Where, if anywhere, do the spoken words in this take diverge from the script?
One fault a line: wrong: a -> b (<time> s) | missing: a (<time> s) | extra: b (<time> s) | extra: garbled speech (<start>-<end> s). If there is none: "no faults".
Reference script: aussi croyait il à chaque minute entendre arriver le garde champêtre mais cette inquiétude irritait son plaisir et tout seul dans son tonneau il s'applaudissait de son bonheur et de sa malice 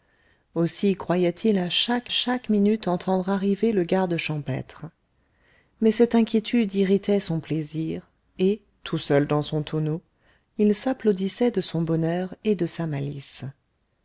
extra: chaque (2.1 s)